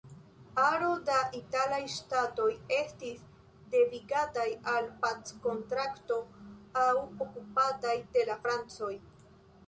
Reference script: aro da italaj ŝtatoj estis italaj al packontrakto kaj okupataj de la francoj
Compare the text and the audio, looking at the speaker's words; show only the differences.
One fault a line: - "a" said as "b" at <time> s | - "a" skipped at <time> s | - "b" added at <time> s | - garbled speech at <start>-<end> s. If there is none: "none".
- "italaj" said as "devigataj" at 3.8 s
- "kaj" said as "aŭ" at 6.8 s